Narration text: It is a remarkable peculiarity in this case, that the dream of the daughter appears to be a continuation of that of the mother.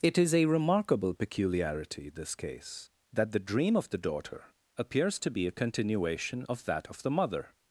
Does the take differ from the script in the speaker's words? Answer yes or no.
yes